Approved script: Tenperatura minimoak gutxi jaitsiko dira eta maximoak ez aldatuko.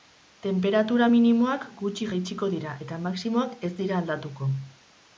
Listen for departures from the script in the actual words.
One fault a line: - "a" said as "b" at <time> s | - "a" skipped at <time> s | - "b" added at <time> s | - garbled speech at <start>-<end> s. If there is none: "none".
- "dira" added at 3.8 s